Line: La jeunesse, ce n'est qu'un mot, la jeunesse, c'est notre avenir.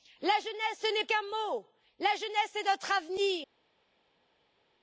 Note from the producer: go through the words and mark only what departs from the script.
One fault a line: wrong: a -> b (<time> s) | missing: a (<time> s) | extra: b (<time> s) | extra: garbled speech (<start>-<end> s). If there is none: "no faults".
no faults